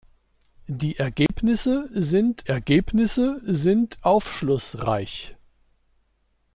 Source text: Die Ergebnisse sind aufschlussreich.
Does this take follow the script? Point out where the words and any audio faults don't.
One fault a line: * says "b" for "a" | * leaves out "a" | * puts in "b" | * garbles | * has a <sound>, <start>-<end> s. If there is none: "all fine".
* has a dropout, 1.3-1.3 s
* puts in "Ergebnisse sind"